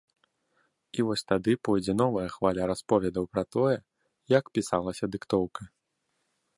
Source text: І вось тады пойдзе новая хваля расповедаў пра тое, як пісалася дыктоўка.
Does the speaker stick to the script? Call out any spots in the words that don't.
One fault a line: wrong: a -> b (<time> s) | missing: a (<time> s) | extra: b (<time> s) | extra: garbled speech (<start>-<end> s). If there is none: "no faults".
no faults